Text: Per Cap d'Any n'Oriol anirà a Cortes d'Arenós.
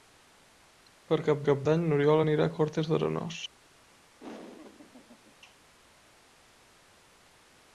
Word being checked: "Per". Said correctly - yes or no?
yes